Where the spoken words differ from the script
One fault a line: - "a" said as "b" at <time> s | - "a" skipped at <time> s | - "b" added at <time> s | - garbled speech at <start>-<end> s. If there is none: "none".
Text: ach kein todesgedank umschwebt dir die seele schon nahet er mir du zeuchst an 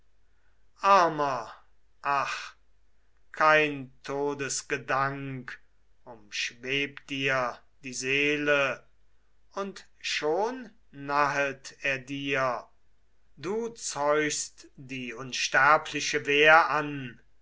- "und" added at 9.5 s
- "mir" said as "dir" at 12.0 s
- "die unsterbliche wehr" added at 14.8 s